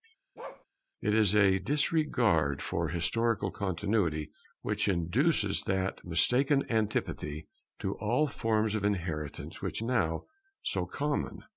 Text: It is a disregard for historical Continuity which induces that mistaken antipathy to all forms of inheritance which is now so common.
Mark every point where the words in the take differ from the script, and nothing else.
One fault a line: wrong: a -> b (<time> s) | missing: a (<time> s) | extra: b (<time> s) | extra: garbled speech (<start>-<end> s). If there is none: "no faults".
missing: is (9.8 s)